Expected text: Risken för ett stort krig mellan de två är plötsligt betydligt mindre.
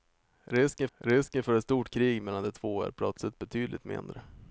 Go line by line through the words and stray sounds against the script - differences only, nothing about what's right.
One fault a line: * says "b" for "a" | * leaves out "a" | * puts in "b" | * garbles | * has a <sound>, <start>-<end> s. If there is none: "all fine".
* puts in "risken"